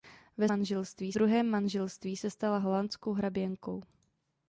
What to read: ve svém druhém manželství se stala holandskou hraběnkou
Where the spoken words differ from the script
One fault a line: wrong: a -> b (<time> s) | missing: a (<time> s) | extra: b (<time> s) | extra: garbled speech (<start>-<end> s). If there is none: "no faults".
wrong: svém -> manželství (0.5 s)